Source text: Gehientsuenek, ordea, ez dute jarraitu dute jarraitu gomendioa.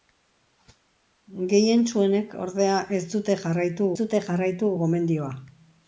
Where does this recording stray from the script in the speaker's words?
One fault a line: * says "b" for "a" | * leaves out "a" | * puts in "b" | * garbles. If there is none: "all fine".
all fine